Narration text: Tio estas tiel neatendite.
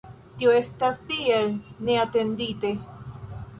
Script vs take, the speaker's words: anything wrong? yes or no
no